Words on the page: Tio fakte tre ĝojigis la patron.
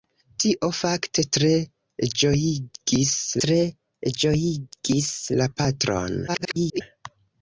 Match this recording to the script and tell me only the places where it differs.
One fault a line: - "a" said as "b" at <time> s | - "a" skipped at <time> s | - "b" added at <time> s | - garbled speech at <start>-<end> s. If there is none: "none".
- "tre ĝojigis" added at 3.4 s
- garbled speech at 6.3-6.8 s